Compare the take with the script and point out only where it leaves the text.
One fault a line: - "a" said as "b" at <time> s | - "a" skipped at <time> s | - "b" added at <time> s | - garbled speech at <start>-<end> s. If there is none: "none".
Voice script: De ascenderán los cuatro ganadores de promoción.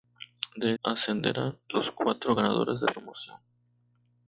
none